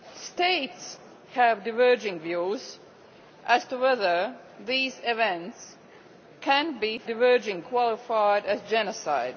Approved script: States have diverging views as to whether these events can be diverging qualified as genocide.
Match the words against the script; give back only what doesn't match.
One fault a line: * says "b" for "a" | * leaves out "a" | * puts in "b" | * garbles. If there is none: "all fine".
all fine